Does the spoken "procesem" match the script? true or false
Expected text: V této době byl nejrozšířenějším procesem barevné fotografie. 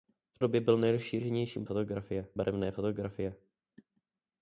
false